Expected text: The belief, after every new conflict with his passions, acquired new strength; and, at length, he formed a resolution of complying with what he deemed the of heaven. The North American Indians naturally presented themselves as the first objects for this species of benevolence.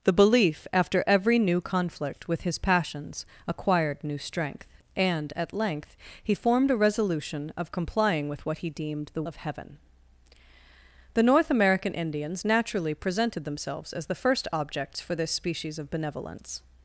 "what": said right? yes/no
yes